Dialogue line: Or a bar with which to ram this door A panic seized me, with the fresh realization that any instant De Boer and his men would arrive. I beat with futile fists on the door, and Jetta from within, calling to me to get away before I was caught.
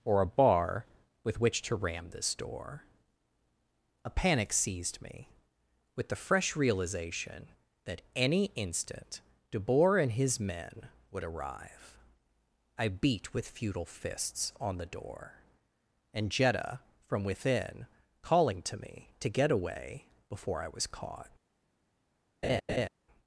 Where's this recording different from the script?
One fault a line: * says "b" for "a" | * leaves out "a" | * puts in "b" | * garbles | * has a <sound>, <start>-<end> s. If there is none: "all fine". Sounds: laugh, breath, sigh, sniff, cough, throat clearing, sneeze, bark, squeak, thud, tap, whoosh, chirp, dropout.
* has a laugh, 22.4-22.9 s